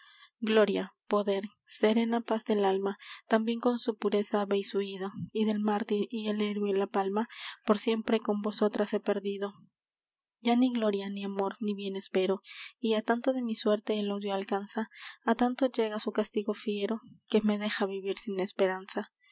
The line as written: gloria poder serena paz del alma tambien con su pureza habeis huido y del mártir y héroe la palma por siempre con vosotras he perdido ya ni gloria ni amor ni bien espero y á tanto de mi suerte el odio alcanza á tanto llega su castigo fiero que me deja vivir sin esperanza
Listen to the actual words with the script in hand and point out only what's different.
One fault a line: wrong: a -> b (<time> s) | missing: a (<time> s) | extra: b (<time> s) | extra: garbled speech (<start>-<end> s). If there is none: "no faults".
extra: el (6.3 s)